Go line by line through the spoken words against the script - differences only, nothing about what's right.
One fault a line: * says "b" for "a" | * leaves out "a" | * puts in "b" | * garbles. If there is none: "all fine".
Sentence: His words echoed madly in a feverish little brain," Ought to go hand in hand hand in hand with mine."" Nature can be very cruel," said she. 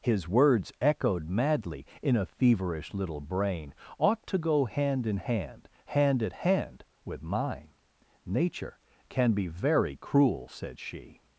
* says "at" for "in"